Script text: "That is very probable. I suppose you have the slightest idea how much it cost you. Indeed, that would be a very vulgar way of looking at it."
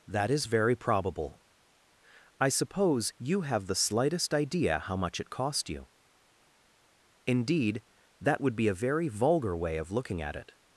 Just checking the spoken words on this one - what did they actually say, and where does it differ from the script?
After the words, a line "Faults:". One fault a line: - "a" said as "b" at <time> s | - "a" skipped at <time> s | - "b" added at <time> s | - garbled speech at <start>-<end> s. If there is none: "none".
"That is very probable. I suppose you have the slightest idea how much it cost you. Indeed, that would be a very vulgar way of looking at it."
Faults:
none